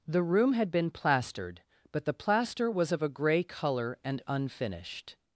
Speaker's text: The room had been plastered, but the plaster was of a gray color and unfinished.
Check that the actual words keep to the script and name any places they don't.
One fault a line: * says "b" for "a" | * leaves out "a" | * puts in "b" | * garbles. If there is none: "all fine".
all fine